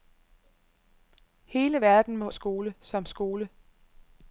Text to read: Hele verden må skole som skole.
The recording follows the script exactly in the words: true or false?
true